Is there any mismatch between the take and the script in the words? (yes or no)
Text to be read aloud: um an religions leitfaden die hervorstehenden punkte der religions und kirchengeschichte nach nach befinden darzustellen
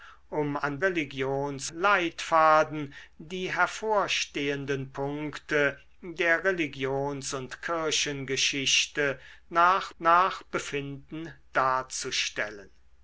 no